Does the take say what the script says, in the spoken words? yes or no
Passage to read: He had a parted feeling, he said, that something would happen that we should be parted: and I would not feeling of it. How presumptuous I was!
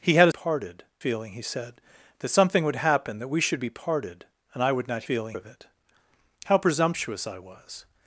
yes